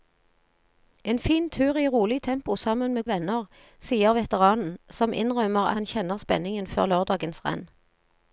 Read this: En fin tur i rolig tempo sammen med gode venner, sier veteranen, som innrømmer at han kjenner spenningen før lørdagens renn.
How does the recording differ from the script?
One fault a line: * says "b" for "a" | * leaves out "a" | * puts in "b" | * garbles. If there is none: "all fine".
* leaves out "gode"
* leaves out "at"